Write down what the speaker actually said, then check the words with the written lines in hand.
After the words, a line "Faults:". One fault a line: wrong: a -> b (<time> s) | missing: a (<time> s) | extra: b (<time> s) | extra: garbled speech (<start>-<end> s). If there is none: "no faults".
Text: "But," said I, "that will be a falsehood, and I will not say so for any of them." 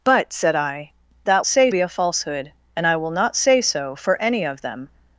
"But," said I, "that say be a falsehood, and I will not say so for any of them."
Faults:
wrong: will -> say (1.5 s)